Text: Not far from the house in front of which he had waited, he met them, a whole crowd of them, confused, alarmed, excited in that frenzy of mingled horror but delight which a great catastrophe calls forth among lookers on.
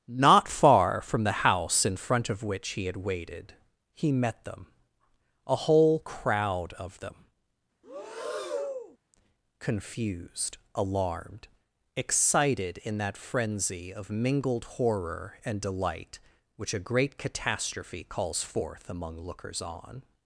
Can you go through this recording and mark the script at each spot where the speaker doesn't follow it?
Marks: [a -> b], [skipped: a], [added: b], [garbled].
Not far from the house in front of which he had waited, he met them, a whole crowd of them, confused, alarmed, excited in that frenzy of mingled horror [but -> and] delight which a great catastrophe calls forth among lookers on.